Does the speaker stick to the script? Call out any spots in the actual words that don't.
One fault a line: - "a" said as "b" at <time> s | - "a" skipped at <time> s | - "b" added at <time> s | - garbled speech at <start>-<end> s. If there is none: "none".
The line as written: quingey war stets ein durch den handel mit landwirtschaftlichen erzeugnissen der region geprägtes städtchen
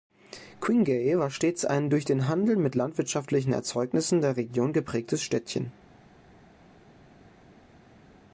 none